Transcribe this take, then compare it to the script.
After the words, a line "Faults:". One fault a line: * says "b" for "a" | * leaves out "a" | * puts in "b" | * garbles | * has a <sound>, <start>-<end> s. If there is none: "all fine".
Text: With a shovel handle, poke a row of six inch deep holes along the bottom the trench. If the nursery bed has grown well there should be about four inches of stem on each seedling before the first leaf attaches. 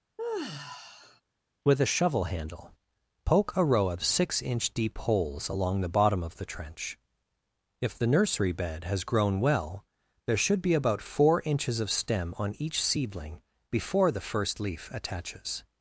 With a shovel handle, poke a row of six inch deep holes along the bottom of the trench. If the nursery bed has grown well there should be about four inches of stem on each seedling before the first leaf attaches.
Faults:
* has a sigh, 0.2-1.2 s
* puts in "of"